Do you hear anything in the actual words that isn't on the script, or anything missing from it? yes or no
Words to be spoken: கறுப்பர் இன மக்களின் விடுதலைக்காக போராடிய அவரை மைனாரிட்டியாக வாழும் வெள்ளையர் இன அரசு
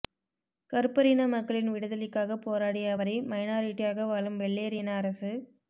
no